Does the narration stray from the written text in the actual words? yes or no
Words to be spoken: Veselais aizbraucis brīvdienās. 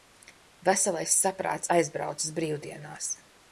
yes